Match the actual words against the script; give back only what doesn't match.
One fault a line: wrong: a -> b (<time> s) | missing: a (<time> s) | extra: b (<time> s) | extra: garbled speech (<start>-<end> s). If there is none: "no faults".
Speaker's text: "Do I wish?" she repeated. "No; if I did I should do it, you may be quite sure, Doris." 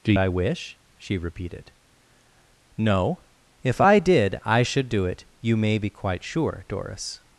no faults